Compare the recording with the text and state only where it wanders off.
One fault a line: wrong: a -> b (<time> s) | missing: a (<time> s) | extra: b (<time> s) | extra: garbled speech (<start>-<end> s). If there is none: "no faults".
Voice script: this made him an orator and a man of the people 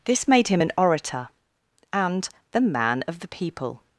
wrong: a -> the (2.5 s)